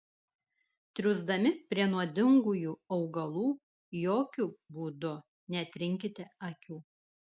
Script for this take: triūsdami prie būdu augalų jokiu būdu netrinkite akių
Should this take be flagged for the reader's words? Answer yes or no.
yes